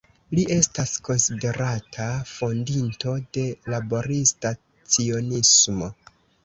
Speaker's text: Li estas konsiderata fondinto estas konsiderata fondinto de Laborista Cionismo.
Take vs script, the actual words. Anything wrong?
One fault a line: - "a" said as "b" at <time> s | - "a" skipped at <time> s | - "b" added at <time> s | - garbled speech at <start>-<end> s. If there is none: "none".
- "estas konsiderata fondinto" skipped at 3.1 s